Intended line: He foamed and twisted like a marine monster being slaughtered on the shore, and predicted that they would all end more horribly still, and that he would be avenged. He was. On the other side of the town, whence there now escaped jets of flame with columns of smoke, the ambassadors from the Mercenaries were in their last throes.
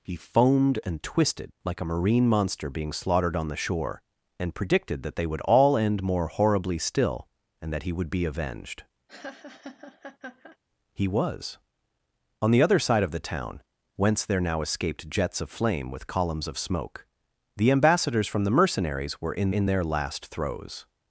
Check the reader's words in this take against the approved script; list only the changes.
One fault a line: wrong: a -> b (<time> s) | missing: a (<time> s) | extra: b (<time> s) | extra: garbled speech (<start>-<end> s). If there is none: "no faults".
extra: in (19.5 s)